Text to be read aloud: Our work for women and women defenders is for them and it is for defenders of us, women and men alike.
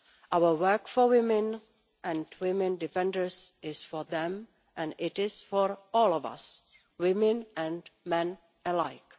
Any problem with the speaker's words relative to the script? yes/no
yes